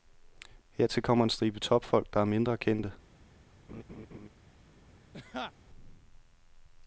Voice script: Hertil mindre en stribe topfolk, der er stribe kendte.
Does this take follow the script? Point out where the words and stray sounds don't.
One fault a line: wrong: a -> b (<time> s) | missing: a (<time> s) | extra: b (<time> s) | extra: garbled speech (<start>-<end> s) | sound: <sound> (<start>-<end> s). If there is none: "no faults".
wrong: mindre -> kommer (1.0 s)
wrong: stribe -> mindre (2.2 s)
sound: laugh (3.7-4.3 s)
sound: laugh (5.1-5.5 s)